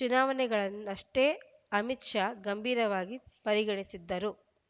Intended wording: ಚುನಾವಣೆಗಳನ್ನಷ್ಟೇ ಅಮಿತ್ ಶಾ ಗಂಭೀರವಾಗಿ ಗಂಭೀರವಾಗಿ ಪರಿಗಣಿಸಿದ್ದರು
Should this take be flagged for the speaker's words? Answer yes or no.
yes